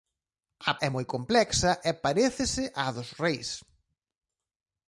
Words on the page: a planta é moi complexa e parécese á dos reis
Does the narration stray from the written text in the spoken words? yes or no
yes